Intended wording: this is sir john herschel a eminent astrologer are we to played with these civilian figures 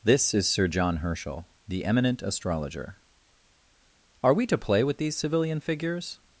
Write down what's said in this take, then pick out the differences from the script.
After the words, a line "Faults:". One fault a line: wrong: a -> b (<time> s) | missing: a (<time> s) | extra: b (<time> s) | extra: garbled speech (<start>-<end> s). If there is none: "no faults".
this is sir john herschel the eminent astrologer are we to play with these civilian figures
Faults:
wrong: a -> the (1.7 s)
wrong: played -> play (4.6 s)